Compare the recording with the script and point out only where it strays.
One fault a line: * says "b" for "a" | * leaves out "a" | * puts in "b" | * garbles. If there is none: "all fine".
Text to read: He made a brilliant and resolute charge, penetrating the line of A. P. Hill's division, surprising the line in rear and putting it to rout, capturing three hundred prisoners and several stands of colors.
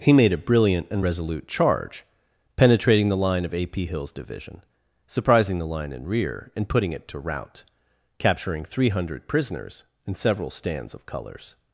all fine